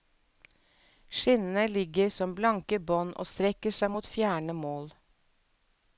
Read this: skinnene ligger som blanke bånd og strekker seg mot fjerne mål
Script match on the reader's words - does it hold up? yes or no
yes